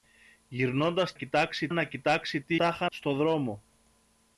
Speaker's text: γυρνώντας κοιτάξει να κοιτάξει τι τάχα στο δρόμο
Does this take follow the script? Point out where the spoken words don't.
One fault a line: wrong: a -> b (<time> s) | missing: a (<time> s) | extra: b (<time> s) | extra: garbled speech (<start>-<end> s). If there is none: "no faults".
no faults